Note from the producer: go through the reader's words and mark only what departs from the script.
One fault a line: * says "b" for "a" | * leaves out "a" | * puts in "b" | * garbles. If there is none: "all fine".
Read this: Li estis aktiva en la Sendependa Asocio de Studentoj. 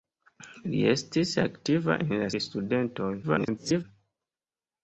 * leaves out "Sendependa Asocio"
* garbles